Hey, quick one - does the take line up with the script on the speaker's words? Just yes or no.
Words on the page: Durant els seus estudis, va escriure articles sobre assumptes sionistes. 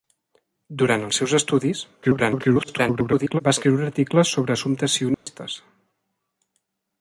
no